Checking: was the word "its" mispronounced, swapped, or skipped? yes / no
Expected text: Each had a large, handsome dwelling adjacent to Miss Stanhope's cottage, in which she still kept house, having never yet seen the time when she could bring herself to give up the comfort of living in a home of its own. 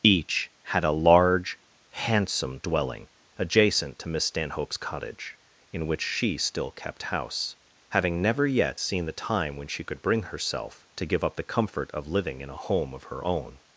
yes